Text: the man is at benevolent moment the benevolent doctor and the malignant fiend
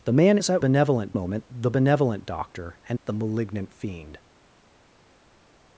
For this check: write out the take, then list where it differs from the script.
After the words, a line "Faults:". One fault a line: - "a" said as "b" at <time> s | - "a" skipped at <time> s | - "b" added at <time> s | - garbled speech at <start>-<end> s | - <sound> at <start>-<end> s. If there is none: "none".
the man is at benevolent moment the benevolent doctor and the malignant fiend
Faults:
none